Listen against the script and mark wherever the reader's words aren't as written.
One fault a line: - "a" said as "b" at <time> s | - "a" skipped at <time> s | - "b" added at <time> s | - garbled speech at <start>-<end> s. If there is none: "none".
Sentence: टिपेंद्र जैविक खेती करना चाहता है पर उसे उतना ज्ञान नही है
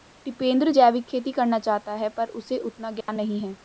none